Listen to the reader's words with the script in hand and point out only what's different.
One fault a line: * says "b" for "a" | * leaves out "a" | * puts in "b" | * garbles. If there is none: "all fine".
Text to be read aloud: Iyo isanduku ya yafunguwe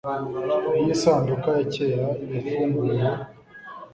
* puts in "kera"